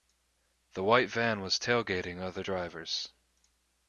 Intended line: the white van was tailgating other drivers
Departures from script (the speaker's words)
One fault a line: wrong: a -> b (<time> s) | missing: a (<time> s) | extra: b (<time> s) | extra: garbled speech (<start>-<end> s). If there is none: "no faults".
no faults